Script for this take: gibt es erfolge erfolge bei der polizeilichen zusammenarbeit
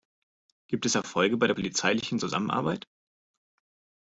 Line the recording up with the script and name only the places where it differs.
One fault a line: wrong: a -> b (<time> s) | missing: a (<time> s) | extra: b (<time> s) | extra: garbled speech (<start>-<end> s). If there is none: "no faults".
missing: erfolge (1.4 s)